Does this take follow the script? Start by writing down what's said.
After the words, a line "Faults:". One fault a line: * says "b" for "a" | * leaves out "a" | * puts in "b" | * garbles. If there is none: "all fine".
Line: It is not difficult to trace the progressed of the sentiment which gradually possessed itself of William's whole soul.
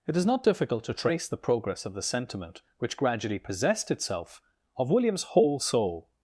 It is not difficult to trace the progress of the sentiment which gradually possessed itself of William's whole soul.
Faults:
* says "progress" for "progressed"